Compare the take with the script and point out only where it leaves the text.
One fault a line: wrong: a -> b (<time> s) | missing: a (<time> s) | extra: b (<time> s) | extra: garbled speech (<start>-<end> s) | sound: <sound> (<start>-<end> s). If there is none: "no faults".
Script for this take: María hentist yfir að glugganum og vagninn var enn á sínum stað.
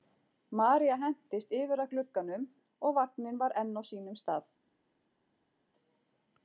no faults